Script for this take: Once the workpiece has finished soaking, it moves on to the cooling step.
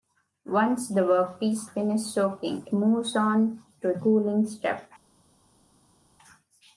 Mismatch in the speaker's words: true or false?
true